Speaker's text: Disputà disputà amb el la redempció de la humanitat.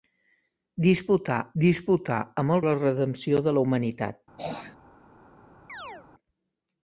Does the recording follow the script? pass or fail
pass